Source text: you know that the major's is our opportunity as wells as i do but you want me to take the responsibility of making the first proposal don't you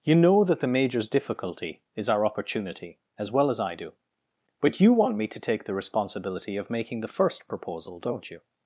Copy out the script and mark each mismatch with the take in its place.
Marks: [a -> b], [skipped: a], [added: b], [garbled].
you know that the major's [added: difficulty] is our opportunity as [wells -> well] as i do but you want me to take the responsibility of making the first proposal don't you